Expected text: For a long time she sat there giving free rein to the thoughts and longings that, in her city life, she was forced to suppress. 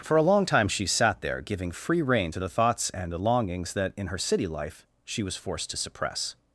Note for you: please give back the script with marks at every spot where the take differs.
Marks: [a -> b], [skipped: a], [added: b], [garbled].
For a long time she sat there giving free rein to the thoughts and [added: the] longings that, in her city life, she was forced to suppress.